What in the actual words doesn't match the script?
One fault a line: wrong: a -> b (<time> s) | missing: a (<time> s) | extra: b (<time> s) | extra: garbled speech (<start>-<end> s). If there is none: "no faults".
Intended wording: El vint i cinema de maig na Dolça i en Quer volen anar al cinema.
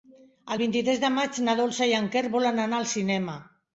wrong: cinema -> tres (0.9 s)